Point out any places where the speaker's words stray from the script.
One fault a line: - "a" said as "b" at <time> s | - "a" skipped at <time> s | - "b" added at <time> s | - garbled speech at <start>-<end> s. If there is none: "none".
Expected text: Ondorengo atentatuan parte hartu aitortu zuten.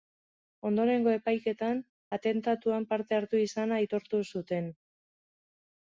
- "epaiketan" added at 1.2 s
- "izana" added at 3.5 s